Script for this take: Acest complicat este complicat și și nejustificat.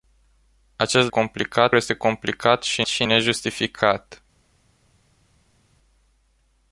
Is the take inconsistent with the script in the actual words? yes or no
no